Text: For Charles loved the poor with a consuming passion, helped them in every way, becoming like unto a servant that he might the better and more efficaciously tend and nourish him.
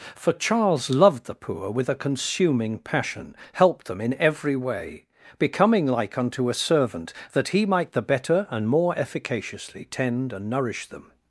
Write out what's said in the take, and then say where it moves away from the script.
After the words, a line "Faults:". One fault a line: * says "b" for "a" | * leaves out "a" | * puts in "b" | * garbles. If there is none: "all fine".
For Charles loved the poor with a consuming passion, helped them in every way, becoming like unto a servant that he might the better and more efficaciously tend and nourish them.
Faults:
* says "them" for "him"